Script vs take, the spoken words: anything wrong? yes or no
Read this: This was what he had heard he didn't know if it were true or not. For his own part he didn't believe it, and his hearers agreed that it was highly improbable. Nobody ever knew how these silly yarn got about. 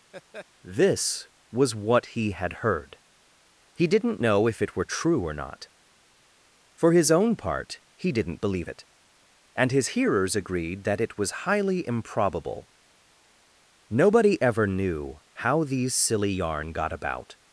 no